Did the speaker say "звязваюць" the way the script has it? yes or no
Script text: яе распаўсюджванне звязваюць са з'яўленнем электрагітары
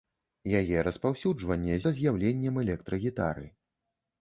no